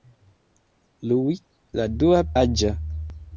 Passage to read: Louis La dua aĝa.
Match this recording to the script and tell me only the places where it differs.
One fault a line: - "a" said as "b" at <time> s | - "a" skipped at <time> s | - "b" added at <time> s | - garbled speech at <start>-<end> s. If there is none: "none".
none